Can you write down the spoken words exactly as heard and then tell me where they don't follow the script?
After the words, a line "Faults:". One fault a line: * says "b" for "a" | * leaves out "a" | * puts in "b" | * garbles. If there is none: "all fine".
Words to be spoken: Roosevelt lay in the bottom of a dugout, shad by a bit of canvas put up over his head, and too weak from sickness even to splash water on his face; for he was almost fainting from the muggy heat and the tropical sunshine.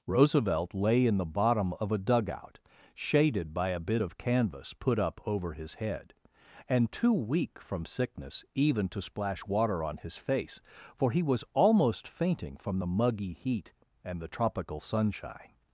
Roosevelt lay in the bottom of a dugout, shaded by a bit of canvas put up over his head, and too weak from sickness even to splash water on his face; for he was almost fainting from the muggy heat and the tropical sunshine.
Faults:
* says "shaded" for "shad"